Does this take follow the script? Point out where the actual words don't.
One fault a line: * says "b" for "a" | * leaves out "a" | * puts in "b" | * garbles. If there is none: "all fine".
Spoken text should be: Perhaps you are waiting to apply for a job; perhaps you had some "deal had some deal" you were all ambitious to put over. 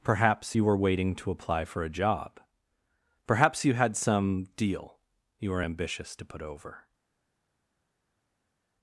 * says "were" for "are"
* leaves out "had some deal"
* leaves out "all"